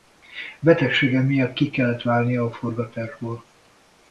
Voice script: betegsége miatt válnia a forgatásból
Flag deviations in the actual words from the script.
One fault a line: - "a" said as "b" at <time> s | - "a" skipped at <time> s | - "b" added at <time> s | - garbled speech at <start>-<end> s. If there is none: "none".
- "ki kellett" added at 1.5 s